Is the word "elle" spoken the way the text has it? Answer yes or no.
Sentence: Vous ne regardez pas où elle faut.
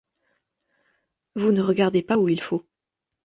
no